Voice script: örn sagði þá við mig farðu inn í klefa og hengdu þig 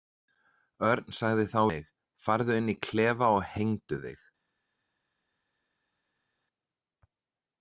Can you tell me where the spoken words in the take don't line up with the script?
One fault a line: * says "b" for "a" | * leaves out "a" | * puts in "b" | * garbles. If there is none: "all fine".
* leaves out "við"